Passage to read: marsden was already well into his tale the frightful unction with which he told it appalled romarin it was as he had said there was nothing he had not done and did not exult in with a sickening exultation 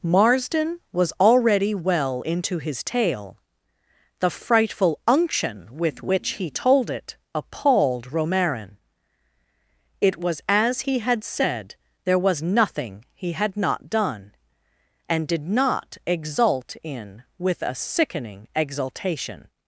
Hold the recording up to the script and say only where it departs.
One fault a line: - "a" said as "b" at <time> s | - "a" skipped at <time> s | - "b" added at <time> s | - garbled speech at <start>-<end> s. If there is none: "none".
none